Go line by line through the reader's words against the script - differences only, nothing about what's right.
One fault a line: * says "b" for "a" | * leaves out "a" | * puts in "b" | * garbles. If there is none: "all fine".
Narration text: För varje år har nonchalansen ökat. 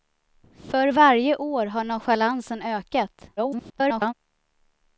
* garbles